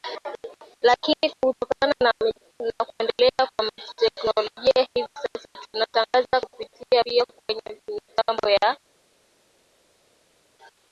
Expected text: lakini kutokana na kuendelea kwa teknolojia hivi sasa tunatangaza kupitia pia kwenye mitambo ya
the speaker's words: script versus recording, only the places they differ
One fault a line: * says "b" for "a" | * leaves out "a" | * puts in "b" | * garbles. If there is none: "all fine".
all fine